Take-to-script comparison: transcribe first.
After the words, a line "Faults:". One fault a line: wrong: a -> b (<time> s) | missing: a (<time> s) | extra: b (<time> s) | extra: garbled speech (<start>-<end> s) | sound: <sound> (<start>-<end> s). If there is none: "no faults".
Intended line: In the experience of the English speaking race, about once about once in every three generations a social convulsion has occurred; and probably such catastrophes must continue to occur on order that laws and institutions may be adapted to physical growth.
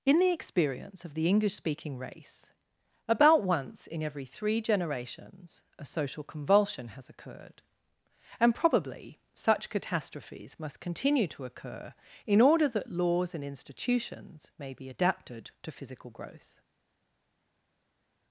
In the experience of the English speaking race, about once in every three generations a social convulsion has occurred; and probably such catastrophes must continue to occur in order that laws and institutions may be adapted to physical growth.
Faults:
missing: about once (3.9 s)
wrong: on -> in (12.2 s)